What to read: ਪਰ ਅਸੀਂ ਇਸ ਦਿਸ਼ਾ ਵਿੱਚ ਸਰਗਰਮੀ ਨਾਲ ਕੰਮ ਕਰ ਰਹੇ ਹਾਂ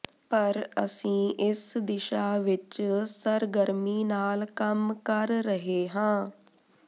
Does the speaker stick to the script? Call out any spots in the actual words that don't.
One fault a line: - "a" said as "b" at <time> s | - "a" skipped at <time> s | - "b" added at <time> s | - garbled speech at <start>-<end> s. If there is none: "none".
none